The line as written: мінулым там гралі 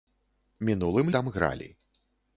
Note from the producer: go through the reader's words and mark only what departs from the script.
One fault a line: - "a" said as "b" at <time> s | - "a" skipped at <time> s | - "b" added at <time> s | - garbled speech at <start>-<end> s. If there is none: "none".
none